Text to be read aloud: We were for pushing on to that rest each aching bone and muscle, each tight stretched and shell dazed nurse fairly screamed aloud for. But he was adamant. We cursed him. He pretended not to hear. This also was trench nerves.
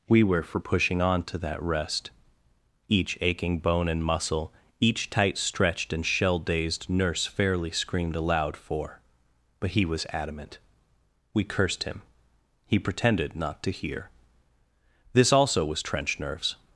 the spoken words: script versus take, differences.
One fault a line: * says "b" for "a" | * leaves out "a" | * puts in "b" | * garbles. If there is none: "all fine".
all fine